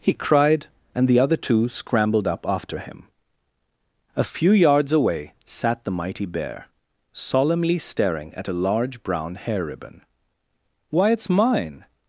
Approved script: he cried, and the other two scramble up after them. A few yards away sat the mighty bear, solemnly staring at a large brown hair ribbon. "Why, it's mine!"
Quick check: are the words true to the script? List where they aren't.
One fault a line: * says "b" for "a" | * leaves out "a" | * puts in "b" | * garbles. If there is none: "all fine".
* says "scrambled" for "scramble"
* says "him" for "them"